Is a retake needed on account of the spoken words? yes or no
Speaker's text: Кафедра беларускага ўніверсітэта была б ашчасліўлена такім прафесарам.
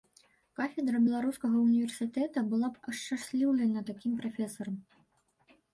no